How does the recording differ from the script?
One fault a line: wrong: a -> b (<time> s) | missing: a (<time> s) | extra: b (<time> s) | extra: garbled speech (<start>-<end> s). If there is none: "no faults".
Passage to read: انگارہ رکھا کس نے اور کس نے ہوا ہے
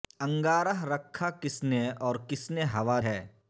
no faults